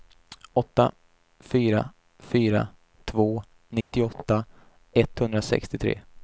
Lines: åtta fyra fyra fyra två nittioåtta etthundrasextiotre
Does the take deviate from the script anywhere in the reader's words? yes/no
yes